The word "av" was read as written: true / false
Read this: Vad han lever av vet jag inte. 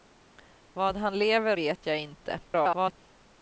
false